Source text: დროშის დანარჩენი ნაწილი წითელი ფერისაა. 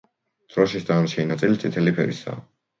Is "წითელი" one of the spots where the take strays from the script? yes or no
no